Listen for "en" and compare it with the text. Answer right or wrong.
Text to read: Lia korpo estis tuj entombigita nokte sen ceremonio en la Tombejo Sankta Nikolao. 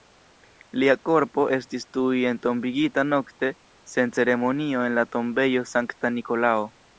right